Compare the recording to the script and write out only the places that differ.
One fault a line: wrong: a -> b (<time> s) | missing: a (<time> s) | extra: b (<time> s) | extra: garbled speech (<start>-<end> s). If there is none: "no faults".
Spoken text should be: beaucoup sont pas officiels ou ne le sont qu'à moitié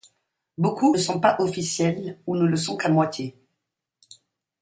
no faults